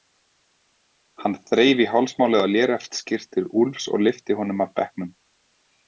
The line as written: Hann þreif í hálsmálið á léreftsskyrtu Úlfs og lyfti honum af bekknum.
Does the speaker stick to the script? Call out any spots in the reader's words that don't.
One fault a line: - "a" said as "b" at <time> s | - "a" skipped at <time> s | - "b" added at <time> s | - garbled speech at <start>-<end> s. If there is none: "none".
none